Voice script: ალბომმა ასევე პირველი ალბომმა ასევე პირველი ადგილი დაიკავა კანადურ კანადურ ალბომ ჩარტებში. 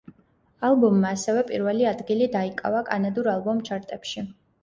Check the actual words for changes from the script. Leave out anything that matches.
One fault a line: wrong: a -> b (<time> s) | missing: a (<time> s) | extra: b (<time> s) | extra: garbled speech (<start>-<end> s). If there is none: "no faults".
missing: ალბომმა ასევე პირველი (1.9 s)
missing: კანადურ (3.3 s)